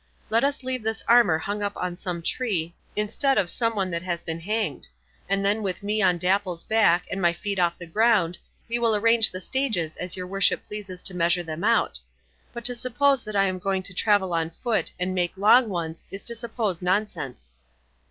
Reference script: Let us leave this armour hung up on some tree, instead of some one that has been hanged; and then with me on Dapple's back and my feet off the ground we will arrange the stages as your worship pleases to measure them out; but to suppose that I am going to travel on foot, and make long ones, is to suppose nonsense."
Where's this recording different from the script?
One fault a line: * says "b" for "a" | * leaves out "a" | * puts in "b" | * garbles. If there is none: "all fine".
all fine